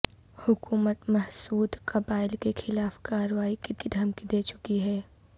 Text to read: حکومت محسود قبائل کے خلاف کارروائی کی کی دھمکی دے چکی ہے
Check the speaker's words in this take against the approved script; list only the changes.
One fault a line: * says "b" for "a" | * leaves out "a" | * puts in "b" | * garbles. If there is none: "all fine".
all fine